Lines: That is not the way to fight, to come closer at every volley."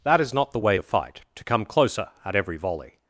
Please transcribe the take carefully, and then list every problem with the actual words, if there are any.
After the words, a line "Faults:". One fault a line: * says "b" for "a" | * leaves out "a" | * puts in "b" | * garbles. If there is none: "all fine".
That is not the way to fight, to come closer at every volley."
Faults:
all fine